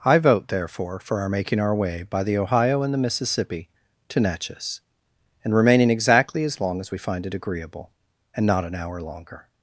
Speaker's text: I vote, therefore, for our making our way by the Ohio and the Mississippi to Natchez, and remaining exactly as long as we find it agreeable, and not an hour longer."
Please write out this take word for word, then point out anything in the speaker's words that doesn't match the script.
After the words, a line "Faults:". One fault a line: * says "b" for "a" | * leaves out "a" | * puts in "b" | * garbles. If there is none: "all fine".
I vote, therefore, for our making our way by the Ohio and the Mississippi to Natchez, and remaining exactly as long as we find it agreeable, and not an hour longer."
Faults:
all fine